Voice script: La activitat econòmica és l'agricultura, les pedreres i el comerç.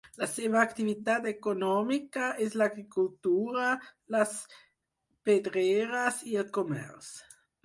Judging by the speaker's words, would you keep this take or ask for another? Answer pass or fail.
fail